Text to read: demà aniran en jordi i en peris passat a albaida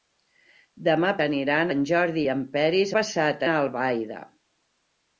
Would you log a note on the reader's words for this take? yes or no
no